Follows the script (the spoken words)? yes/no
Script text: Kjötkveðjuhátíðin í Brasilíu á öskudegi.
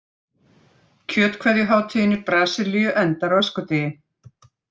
no